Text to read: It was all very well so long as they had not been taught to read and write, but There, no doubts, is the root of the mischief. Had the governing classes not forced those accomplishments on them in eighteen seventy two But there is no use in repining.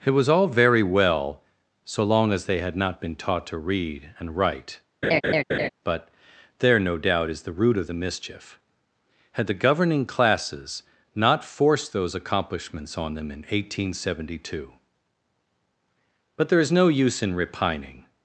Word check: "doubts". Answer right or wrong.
wrong